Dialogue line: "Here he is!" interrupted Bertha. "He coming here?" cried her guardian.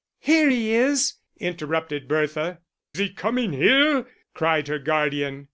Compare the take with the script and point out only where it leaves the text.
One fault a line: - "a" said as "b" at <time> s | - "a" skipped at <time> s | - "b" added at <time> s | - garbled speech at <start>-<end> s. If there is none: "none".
none